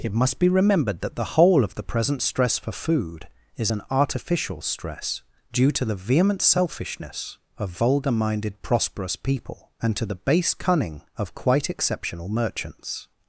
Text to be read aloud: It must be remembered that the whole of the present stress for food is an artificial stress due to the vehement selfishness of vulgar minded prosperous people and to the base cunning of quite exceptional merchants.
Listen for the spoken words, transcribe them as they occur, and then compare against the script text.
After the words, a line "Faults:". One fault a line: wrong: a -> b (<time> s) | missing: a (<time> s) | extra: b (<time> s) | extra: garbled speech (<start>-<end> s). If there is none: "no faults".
It must be remembered that the whole of the present stress for food is an artificial stress due to the vehement selfishness of vulgar minded prosperous people and to the base cunning of quite exceptional merchants.
Faults:
no faults